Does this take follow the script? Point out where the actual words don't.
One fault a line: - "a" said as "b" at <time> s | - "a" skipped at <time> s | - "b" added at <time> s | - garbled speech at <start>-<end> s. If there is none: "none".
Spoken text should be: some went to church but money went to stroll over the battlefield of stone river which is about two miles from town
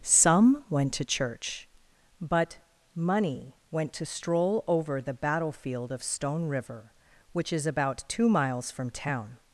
none